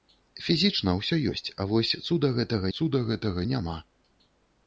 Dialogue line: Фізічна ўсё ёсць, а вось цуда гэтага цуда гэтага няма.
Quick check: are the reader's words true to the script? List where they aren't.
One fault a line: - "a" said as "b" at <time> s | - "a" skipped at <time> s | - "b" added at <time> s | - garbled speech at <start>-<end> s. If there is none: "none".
none